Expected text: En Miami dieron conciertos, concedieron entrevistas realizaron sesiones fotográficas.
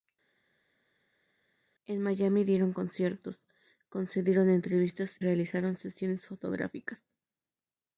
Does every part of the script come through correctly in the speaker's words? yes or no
yes